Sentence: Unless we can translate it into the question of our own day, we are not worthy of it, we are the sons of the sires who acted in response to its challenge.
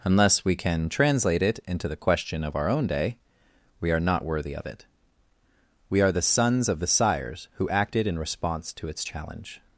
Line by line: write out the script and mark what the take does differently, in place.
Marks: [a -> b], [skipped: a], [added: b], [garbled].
Unless we can translate it into the question of our own day, we are not worthy of it, we are the sons of the sires who acted in response to its challenge.